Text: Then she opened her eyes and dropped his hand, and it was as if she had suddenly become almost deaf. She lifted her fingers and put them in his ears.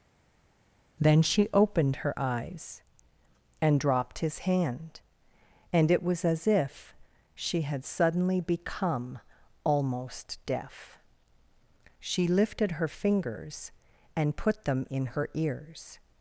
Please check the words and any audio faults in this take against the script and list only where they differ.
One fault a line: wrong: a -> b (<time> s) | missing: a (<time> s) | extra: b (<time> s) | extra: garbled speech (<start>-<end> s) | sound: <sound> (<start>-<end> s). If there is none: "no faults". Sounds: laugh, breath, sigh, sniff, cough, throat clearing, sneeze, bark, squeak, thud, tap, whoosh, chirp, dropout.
wrong: his -> her (15.1 s)